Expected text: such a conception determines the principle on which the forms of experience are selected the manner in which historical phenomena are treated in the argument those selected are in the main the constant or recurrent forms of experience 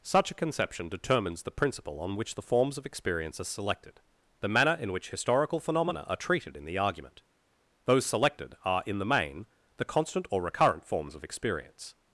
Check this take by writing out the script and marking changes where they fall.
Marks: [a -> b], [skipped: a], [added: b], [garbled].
such a conception determines the principle on which the forms of experience are selected the manner in which historical phenomena are treated in the argument those selected are in the main the constant or recurrent forms of experience